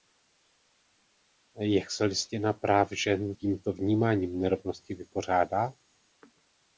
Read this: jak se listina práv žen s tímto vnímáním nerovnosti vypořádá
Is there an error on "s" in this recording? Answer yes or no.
yes